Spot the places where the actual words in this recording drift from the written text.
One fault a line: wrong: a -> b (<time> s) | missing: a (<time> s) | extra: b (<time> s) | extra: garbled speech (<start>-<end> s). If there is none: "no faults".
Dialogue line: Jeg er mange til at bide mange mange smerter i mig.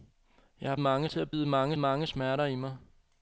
no faults